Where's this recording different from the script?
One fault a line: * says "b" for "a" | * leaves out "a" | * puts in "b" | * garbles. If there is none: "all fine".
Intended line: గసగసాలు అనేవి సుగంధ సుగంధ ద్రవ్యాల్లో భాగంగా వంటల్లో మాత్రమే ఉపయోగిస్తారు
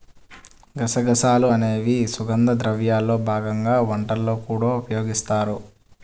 * leaves out "సుగంధ"
* says "కూడా" for "మాత్రమే"